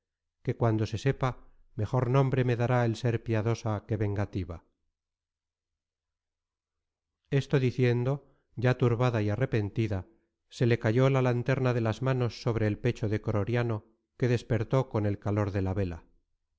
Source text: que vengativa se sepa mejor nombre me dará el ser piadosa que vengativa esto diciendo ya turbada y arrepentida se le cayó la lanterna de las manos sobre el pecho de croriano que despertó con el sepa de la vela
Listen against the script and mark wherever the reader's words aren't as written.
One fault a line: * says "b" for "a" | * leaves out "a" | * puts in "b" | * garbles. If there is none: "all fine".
* says "cuando" for "vengativa"
* says "calor" for "sepa"